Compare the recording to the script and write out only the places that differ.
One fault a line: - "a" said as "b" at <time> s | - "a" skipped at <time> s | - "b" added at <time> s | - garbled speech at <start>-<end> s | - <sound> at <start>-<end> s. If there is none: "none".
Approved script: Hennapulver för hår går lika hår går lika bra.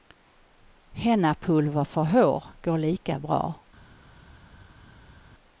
- "hår går lika" skipped at 3.2 s